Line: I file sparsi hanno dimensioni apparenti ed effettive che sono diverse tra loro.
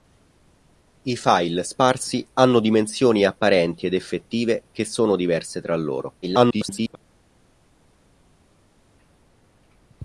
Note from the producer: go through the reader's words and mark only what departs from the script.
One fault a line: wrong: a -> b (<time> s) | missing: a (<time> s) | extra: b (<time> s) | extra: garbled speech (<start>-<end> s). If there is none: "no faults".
extra: garbled speech (6.2-7.0 s)